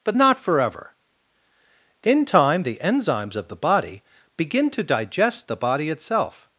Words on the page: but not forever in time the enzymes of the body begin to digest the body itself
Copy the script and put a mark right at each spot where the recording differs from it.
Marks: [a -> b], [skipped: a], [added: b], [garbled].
but not forever in time the enzymes of the body begin to digest the body itself